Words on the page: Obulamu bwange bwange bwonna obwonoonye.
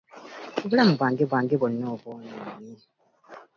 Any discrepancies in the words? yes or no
no